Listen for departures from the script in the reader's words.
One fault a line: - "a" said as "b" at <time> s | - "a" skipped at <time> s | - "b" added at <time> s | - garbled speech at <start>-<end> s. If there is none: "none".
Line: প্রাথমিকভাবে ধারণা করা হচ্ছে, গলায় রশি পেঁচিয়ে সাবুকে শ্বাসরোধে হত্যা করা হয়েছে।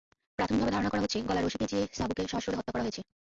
none